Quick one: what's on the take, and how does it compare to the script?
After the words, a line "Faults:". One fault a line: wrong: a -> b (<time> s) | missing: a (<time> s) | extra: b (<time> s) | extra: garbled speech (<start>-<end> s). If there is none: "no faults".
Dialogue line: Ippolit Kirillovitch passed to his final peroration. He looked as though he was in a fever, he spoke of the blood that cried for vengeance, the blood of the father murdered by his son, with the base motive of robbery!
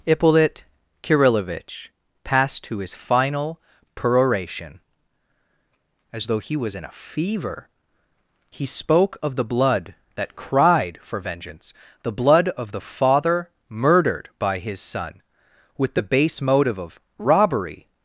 Ippolit Kirillovitch passed to his final peroration. As though he was in a fever, he spoke of the blood that cried for vengeance, the blood of the father murdered by his son, with the base motive of robbery!
Faults:
missing: He looked (4.8 s)